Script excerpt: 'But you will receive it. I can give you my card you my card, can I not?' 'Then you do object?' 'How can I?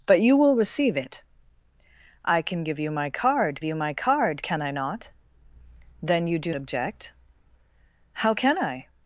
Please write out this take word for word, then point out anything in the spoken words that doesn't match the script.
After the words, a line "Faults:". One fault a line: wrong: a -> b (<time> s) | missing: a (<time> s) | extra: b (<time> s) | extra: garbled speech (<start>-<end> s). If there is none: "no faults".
'But you will receive it. I can give you my card you my card, can I not?' 'Then you do object?' 'How can I?
Faults:
no faults